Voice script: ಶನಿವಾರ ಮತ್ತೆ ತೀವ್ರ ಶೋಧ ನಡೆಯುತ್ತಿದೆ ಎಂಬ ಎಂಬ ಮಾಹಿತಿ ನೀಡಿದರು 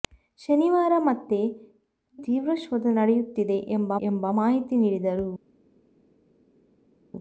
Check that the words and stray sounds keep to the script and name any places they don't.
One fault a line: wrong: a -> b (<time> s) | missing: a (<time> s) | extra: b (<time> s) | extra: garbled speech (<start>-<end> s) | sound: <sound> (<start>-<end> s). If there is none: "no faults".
no faults